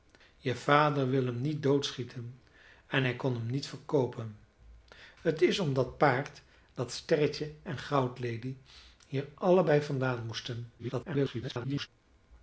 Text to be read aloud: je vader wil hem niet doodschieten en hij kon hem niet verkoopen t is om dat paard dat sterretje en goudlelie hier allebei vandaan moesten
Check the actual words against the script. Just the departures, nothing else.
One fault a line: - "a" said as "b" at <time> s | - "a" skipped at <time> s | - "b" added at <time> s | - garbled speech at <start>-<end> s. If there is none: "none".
- garbled speech at 10.8-11.9 s